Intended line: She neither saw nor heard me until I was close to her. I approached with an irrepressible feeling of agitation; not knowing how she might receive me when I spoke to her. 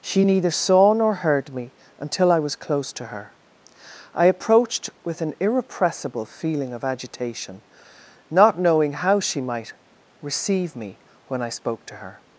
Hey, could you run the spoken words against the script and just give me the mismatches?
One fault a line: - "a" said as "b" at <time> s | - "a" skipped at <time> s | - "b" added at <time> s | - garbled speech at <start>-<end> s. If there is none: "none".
none